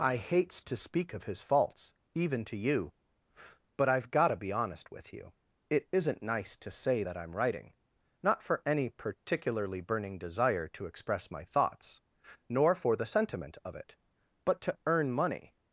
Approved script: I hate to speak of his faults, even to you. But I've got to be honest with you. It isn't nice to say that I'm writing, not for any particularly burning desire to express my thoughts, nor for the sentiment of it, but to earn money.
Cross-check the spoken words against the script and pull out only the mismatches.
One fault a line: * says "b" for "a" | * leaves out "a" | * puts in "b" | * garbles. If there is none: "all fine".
* says "hates" for "hate"